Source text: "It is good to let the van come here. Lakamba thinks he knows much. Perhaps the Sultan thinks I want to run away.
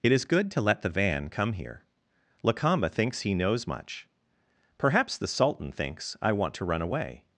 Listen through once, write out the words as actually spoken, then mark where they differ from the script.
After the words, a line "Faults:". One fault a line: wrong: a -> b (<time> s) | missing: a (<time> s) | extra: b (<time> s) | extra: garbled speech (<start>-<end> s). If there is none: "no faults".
"It is good to let the van come here. Lakamba thinks he knows much. Perhaps the Sultan thinks I want to run away.
Faults:
no faults